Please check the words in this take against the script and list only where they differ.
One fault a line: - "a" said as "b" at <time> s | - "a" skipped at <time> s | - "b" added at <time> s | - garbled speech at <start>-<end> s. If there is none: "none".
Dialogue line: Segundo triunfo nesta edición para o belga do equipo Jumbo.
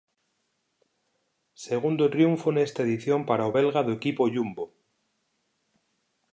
none